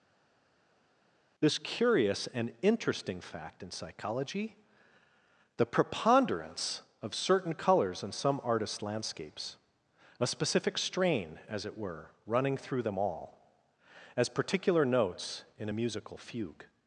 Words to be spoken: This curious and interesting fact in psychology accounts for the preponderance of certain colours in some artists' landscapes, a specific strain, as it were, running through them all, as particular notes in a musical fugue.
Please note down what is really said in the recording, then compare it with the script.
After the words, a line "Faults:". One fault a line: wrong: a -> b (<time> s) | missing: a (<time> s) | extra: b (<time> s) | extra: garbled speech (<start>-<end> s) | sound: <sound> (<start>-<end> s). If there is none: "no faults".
This curious and interesting fact in psychology the preponderance of certain colours in some artists' landscapes, a specific strain, as it were, running through them all, as particular notes in a musical fugue.
Faults:
missing: accounts for (4.6 s)